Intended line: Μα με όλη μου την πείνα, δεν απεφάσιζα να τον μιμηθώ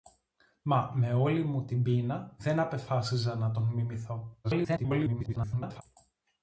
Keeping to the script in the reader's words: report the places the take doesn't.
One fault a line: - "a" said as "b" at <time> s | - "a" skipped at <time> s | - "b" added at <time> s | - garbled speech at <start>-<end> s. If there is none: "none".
- garbled speech at 4.4-5.8 s